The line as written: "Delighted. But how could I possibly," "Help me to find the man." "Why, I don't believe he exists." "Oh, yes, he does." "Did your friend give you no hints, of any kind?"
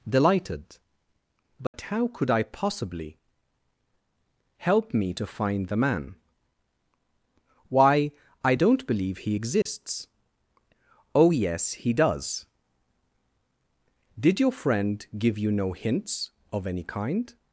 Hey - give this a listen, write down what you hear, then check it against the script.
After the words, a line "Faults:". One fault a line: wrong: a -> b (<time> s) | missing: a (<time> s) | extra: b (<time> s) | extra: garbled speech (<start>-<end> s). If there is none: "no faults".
"Delighted. But how could I possibly," "Help me to find the man." "Why, I don't believe he exists." "Oh, yes, he does." "Did your friend give you no hints, of any kind?"
Faults:
no faults